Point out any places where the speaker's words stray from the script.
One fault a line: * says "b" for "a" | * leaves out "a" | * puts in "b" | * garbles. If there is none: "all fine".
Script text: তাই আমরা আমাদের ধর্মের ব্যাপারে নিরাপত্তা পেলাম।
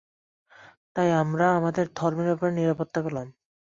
all fine